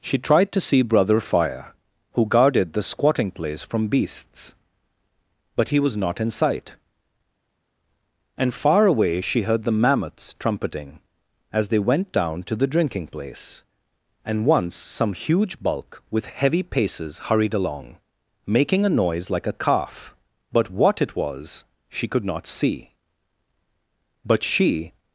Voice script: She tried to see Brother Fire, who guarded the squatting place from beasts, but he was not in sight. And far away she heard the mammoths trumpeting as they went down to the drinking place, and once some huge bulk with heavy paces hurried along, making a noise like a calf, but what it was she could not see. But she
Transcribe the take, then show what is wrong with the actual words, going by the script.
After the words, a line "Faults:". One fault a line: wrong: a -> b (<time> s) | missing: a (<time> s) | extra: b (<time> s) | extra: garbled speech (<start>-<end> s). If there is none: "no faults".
She tried to see Brother Fire, who guarded the squatting place from beasts, but he was not in sight. And far away she heard the mammoths trumpeting as they went down to the drinking place, and once some huge bulk with heavy paces hurried along, making a noise like a calf, but what it was she could not see. But she
Faults:
no faults